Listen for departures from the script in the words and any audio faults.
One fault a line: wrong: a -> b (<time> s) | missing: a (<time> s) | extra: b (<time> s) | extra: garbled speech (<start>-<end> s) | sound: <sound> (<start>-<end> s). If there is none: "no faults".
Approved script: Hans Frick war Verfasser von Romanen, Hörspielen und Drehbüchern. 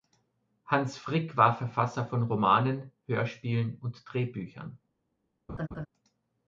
sound: laugh (5.5-5.9 s)